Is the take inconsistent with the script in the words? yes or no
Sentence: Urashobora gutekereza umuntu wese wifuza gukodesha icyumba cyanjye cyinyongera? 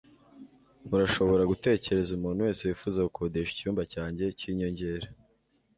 no